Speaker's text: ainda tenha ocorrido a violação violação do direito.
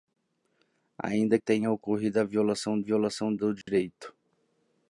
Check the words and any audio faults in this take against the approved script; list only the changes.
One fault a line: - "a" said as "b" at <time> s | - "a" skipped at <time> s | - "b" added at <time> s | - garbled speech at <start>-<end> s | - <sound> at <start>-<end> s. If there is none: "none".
- dropout at 3.6-3.7 s